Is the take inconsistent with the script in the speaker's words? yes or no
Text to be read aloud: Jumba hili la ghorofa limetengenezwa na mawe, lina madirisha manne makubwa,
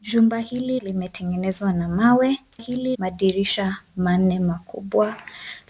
yes